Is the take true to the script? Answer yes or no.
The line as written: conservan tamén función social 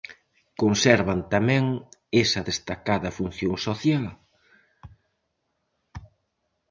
no